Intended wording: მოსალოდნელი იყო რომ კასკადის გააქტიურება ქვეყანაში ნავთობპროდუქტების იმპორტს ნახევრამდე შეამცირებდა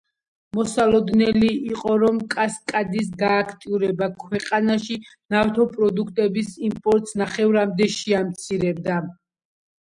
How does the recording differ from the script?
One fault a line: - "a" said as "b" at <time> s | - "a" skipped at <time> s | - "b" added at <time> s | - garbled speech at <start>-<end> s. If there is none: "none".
none